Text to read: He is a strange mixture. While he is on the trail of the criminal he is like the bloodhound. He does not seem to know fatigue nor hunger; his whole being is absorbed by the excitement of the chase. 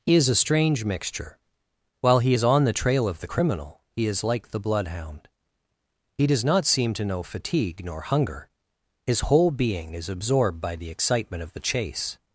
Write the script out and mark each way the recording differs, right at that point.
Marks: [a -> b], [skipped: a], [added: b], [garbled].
He is a strange mixture. While he is on the trail of the criminal he is like the bloodhound. He does not seem to know fatigue nor hunger; his whole being is absorbed by the excitement of the chase.